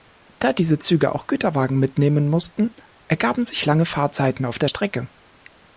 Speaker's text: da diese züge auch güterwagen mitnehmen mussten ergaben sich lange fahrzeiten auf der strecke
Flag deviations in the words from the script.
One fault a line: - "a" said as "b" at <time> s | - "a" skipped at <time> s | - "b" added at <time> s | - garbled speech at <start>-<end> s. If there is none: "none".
none